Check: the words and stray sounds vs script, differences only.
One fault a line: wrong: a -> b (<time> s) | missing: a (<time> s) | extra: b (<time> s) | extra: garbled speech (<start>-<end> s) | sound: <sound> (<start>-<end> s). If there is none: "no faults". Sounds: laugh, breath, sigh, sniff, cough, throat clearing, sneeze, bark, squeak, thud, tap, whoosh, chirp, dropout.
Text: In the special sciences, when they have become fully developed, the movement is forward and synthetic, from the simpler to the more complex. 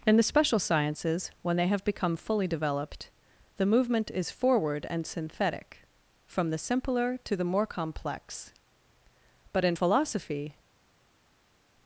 extra: But in philosophy (9.5 s)